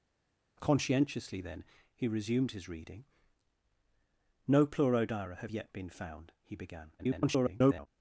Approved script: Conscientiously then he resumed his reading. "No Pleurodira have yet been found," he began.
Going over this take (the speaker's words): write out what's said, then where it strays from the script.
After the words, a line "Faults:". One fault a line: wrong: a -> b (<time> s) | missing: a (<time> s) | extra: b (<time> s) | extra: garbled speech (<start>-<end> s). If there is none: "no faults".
Conscientiously then he resumed his reading. "No Pleurodira have yet been found," he began. [garbled]
Faults:
extra: garbled speech (7.0-7.9 s)